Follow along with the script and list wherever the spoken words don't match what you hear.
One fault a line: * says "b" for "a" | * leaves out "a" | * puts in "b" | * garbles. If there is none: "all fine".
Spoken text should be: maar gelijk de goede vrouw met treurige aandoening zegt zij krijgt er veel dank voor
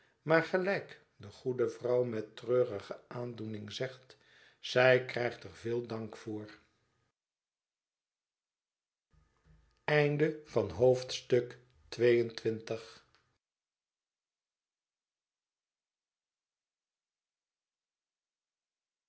all fine